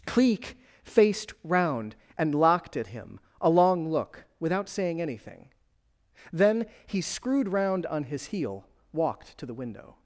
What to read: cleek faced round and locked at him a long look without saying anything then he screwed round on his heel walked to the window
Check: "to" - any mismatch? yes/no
no